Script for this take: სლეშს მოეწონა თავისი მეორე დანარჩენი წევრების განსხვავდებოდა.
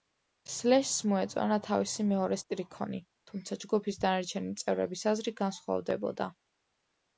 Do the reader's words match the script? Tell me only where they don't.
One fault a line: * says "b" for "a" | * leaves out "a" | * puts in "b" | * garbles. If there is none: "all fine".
* puts in "სტრიქონი თუმცა ჯგუფის"
* puts in "აზრი"